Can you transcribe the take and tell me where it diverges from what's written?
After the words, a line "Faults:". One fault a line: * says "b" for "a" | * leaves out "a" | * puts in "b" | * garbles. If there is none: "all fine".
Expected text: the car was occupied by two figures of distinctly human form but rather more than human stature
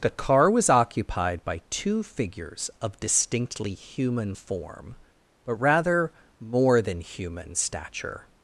the car was occupied by two figures of distinctly human form but rather more than human stature
Faults:
all fine